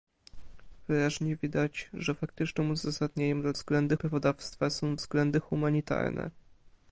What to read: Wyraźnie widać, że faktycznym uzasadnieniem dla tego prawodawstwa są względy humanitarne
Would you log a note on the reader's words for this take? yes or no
yes